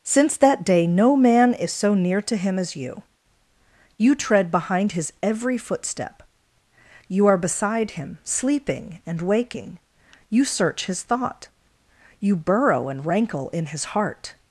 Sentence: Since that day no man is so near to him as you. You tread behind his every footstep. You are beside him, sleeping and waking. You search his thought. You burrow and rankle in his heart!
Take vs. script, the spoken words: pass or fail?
pass